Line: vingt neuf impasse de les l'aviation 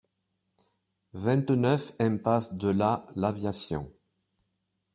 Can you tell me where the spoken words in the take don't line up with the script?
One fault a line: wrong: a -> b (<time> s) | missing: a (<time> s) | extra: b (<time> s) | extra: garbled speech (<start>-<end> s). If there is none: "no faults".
wrong: les -> la (2.7 s)